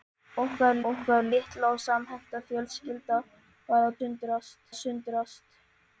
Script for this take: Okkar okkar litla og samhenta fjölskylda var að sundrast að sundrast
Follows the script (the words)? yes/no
yes